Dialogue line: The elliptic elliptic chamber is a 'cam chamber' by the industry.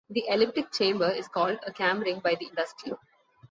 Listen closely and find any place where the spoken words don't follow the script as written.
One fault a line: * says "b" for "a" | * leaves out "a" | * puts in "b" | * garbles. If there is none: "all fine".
* leaves out "elliptic"
* puts in "called"
* says "ring" for "chamber"